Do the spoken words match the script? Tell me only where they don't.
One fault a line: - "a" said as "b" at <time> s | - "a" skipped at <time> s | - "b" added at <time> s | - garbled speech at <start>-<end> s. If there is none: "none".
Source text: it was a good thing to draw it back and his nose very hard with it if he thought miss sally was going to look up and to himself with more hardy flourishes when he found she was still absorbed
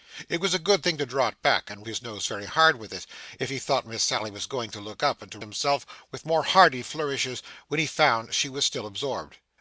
none